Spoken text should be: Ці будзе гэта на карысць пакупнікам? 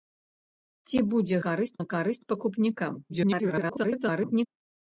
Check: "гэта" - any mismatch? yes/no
yes